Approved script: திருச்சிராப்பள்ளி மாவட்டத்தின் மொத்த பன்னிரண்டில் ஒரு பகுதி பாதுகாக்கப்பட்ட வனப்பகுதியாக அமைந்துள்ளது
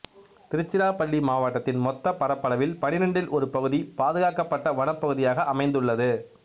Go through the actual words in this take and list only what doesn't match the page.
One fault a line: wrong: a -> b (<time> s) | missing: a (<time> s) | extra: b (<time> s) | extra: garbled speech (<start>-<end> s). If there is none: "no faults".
extra: பரப்பளவில் (2.1 s)